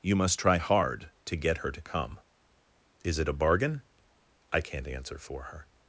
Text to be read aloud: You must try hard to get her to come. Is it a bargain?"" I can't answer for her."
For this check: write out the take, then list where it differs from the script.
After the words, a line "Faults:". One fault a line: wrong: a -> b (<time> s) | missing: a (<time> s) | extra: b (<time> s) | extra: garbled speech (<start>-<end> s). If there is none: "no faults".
You must try hard to get her to come. Is it a bargain?"" I can't answer for her."
Faults:
no faults